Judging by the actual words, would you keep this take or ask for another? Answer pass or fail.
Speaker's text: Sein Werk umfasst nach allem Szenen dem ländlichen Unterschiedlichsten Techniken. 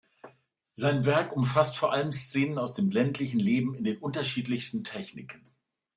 fail